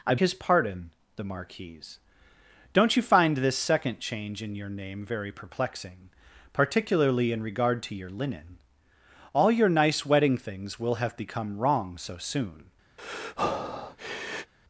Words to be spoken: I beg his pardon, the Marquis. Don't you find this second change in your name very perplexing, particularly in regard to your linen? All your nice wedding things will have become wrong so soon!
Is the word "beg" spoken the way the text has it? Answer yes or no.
no